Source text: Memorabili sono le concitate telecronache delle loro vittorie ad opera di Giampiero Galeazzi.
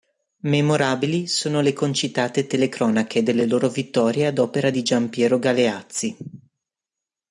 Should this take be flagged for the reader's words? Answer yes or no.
no